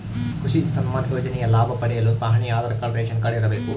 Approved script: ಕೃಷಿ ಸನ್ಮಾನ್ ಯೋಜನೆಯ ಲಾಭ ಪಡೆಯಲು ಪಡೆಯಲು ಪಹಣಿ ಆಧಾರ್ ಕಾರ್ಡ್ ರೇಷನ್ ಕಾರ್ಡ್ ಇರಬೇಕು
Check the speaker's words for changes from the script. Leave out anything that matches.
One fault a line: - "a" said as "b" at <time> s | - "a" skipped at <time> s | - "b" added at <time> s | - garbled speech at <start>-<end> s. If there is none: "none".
- "ಪಡೆಯಲು" skipped at 2.1 s